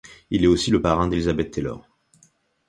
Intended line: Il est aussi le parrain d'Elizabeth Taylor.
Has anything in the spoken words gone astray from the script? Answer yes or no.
no